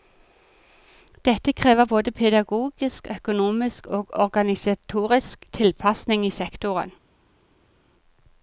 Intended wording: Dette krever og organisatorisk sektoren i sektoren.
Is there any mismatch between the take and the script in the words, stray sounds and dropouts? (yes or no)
yes